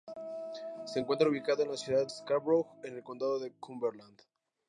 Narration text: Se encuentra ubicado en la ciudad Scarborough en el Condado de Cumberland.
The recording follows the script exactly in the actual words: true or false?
true